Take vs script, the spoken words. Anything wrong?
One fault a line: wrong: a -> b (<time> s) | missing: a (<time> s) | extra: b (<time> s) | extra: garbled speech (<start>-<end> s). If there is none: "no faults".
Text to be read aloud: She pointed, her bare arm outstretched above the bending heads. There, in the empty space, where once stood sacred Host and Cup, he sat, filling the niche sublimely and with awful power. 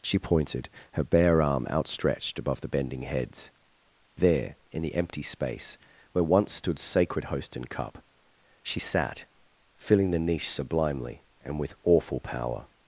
wrong: he -> she (8.6 s)